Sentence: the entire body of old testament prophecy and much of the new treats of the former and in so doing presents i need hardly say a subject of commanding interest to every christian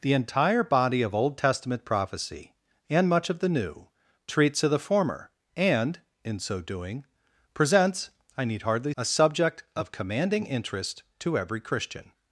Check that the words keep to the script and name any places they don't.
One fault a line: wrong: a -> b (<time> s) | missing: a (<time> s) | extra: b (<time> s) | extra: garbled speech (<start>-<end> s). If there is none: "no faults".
missing: say (8.9 s)